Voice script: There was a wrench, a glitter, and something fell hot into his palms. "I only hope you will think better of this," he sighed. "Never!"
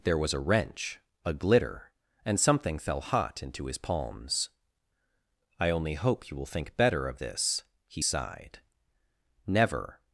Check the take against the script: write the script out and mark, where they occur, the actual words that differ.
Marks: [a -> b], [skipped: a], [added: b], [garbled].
There was a wrench, a glitter, and something fell hot into his palms. "I only hope you will think better of this," he sighed. "Never!"